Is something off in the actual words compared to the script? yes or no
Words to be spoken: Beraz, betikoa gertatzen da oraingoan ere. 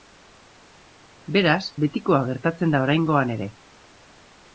no